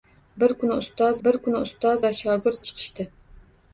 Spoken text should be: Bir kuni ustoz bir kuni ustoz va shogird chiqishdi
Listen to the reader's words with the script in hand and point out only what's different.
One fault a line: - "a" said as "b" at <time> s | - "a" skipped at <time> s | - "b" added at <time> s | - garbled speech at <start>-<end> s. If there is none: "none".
none